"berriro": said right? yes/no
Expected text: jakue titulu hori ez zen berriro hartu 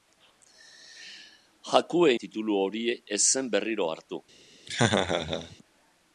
yes